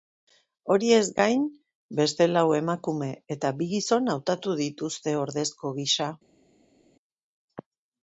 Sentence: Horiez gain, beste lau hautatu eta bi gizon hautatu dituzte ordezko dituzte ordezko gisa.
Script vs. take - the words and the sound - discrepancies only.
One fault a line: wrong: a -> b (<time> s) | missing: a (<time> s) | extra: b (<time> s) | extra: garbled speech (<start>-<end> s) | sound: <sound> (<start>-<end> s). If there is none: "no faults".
wrong: hautatu -> emakume (2.6 s)
missing: dituzte ordezko (5.8 s)